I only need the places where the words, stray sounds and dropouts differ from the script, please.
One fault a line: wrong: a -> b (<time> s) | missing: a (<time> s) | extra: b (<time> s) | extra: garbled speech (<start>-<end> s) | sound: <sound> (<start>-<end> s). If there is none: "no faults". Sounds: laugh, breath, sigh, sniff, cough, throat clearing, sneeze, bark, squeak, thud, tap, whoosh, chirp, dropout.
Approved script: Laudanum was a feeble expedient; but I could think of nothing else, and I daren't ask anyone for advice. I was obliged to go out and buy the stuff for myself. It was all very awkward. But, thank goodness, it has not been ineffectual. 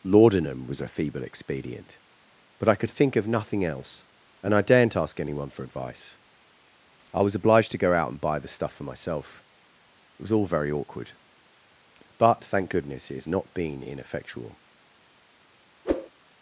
sound: whoosh (15.8-16.1 s)